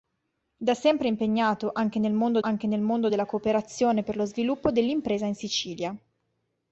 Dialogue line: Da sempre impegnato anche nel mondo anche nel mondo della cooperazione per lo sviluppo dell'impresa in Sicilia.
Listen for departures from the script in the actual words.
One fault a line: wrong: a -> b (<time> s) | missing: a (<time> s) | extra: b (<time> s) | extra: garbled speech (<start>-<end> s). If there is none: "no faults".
no faults